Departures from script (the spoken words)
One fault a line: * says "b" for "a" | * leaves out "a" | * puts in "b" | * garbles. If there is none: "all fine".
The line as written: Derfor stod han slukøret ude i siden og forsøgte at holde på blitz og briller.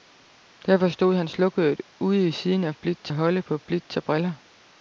* says "blitz" for "forsøgte"